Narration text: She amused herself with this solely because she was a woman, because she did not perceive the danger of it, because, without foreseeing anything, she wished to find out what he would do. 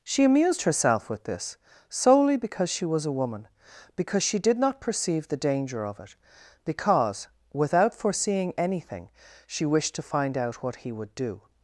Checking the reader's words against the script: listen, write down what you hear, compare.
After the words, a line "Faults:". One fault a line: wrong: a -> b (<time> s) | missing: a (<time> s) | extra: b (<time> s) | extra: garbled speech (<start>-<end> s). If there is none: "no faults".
She amused herself with this solely because she was a woman, because she did not perceive the danger of it, because, without foreseeing anything, she wished to find out what he would do.
Faults:
no faults